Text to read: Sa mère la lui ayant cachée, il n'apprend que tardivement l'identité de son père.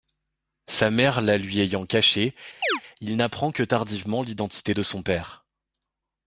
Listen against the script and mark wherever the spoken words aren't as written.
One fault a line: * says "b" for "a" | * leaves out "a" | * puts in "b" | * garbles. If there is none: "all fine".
all fine